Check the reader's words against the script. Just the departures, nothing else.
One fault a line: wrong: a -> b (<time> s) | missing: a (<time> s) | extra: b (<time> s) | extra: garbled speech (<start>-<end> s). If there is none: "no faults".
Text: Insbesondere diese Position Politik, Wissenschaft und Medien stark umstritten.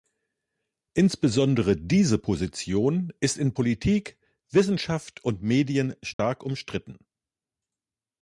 extra: ist in (3.2 s)